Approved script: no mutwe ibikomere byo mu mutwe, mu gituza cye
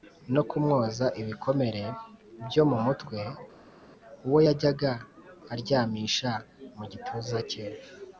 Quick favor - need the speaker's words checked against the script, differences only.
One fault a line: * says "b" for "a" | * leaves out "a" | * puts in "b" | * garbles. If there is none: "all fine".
* says "kumwoza" for "mutwe"
* puts in "uwo yajyaga aryamisha"